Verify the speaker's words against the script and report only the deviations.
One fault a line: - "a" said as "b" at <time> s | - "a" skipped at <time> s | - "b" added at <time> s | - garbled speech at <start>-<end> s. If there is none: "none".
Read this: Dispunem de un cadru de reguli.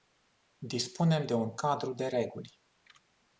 none